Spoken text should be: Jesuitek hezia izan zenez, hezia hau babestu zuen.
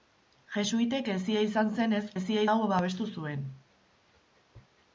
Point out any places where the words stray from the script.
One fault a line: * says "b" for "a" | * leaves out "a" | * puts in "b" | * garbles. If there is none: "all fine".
all fine